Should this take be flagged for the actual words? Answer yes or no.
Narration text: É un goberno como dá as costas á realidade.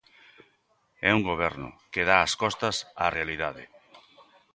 yes